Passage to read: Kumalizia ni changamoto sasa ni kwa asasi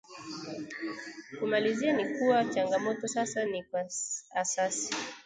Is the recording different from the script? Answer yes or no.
yes